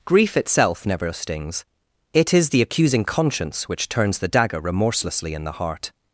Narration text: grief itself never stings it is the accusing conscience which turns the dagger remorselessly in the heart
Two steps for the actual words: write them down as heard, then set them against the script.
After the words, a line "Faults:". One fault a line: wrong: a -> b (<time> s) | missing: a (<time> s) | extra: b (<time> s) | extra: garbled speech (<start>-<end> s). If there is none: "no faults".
grief itself never stings it is the accusing conscience which turns the dagger remorselessly in the heart
Faults:
no faults